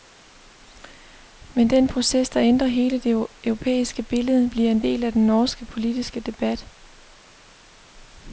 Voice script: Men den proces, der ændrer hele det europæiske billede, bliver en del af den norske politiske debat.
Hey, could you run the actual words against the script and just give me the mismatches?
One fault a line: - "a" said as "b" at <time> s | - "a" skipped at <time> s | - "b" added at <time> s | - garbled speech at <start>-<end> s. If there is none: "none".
none